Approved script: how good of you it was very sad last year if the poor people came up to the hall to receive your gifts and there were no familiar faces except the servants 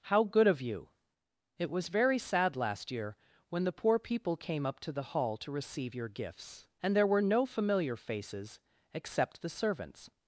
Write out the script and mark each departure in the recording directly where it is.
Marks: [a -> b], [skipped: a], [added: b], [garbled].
how good of you it was very sad last year [if -> when] the poor people came up to the hall to receive your gifts and there were no familiar faces except the servants